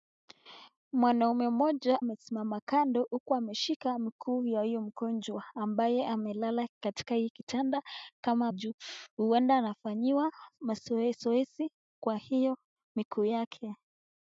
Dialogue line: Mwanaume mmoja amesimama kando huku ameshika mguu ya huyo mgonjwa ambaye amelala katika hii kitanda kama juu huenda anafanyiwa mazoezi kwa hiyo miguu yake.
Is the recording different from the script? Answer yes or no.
no